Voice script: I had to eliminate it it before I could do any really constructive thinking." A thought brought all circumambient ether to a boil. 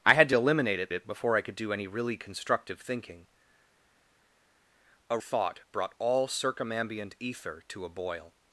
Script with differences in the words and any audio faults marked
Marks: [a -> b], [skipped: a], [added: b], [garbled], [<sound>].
I had to eliminate it it before I could do any really constructive thinking." A thought brought all circumambient ether to a boil.